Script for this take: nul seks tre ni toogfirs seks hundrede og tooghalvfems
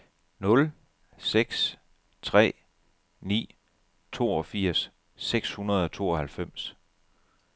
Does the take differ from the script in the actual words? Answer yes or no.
no